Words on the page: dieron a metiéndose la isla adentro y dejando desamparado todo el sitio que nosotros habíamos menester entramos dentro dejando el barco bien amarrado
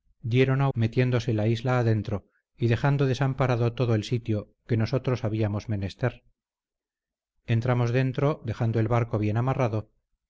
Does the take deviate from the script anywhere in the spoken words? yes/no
no